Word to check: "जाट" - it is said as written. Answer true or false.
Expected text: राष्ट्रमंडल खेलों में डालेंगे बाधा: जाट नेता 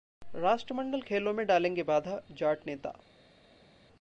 true